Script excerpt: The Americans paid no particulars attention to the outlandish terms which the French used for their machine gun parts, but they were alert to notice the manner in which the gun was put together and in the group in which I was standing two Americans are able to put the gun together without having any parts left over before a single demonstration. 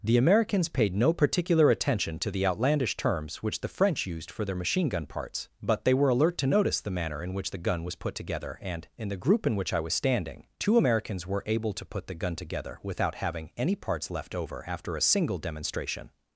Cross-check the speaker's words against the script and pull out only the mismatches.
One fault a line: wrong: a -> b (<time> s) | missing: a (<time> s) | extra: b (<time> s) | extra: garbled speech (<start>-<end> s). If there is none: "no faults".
wrong: particulars -> particular (1.1 s)
wrong: are -> were (11.2 s)
wrong: before -> after (14.7 s)